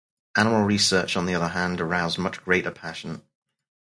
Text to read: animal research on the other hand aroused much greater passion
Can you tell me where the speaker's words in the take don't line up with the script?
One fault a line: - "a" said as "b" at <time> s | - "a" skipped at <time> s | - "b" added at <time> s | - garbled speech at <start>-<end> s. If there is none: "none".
none